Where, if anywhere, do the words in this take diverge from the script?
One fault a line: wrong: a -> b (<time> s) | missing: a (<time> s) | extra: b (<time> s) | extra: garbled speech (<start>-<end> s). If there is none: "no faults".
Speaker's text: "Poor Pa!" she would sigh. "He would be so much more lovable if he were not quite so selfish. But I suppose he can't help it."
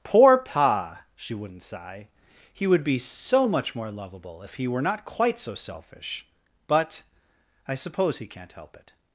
wrong: would -> wouldn't (1.3 s)